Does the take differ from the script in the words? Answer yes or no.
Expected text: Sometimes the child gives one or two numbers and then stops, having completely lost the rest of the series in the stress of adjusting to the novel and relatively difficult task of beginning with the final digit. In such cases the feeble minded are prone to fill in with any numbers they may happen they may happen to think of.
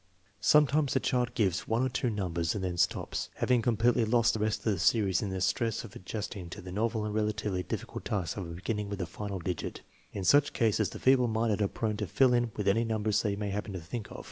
yes